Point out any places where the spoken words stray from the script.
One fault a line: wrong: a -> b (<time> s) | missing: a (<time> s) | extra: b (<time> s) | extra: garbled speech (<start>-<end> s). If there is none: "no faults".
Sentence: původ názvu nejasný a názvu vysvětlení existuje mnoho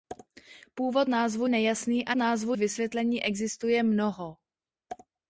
no faults